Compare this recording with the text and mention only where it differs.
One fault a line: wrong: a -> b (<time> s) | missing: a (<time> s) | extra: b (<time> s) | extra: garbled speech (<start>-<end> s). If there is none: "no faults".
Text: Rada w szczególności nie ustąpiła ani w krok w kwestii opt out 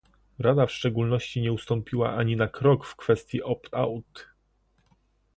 wrong: w -> na (2.4 s)